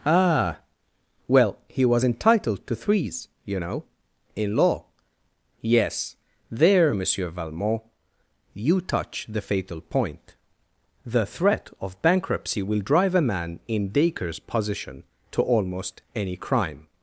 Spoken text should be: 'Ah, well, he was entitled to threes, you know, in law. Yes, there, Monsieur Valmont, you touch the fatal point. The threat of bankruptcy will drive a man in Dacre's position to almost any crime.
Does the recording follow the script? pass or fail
pass